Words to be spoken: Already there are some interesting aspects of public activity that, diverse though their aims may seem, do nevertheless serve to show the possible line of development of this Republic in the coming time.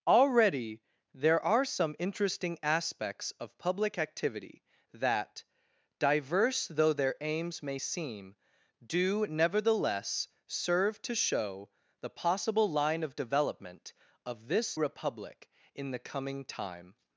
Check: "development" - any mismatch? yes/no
no